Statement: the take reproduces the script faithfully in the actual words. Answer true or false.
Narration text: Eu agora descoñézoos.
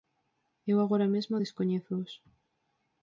false